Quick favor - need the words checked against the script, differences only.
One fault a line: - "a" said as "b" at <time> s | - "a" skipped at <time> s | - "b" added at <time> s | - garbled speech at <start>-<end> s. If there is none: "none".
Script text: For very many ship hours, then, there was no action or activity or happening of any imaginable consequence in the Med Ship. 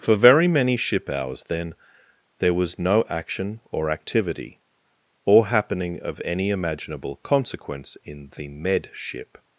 none